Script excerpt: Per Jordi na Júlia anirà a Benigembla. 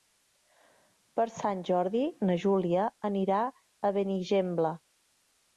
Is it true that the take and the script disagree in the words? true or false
true